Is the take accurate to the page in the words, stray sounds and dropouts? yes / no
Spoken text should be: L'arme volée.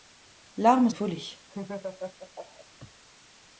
no